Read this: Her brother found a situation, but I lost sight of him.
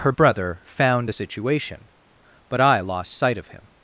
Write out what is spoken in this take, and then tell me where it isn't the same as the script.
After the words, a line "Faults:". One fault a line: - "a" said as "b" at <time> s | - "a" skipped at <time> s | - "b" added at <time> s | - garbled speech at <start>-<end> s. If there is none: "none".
Her brother found a situation, but I lost sight of him.
Faults:
none